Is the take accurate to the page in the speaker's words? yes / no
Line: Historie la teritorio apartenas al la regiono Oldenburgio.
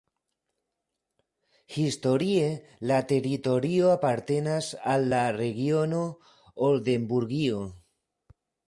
yes